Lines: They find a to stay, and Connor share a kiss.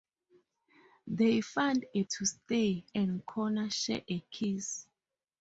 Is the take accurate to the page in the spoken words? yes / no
yes